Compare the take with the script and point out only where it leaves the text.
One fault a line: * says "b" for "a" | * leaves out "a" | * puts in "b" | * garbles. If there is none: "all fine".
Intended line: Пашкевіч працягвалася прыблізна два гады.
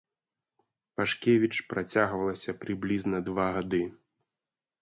all fine